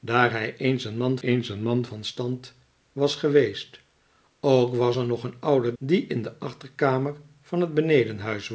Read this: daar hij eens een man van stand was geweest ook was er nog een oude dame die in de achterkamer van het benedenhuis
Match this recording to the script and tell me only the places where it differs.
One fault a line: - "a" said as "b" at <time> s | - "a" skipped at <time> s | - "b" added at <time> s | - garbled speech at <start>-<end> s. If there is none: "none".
- "eens een man" added at 1.2 s
- "dame" skipped at 5.7 s